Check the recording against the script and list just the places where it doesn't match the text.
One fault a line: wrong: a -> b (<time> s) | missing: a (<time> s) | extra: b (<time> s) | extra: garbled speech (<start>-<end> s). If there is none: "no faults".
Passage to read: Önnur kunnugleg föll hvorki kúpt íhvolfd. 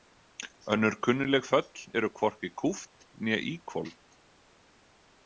extra: eru (2.0 s)
extra: né (3.2 s)